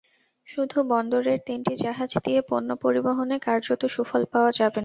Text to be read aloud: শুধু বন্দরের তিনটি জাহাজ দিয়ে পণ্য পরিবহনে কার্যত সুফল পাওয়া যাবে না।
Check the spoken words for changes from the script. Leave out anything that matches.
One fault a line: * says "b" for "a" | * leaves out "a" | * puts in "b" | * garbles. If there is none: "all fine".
all fine